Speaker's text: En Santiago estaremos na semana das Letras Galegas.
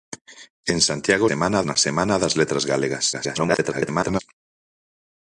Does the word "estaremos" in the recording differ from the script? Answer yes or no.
yes